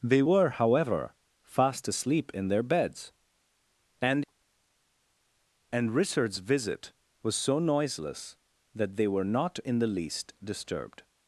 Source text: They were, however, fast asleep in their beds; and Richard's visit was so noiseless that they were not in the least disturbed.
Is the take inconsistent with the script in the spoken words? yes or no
yes